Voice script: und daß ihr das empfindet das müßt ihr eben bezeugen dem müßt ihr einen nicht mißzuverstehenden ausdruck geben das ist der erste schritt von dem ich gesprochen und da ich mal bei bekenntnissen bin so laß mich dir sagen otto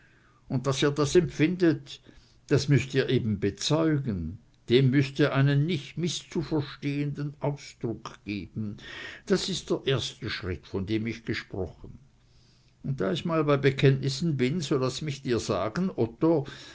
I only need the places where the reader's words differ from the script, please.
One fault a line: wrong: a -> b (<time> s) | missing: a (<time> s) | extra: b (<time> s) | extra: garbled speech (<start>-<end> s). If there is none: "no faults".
no faults